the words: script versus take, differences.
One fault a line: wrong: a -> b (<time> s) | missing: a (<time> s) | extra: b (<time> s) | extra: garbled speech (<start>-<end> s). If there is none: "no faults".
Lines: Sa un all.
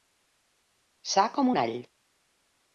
extra: com (1.3 s)